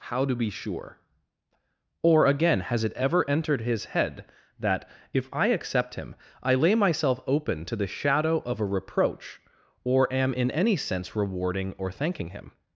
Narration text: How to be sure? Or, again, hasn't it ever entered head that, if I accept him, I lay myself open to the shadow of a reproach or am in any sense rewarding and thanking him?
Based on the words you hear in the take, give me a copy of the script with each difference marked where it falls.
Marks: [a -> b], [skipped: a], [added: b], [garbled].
How to be sure? Or, again, [hasn't -> has] it ever entered [added: his] head that, if I accept him, I lay myself open to the shadow of a reproach or am in any sense rewarding [and -> or] thanking him?